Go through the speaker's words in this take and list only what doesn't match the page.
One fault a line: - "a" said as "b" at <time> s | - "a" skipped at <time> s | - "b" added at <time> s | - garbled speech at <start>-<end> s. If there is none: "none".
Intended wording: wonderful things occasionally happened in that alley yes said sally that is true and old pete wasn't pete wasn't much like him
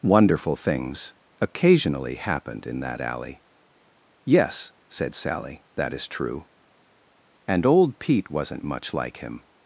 - "pete wasn't" skipped at 8.6 s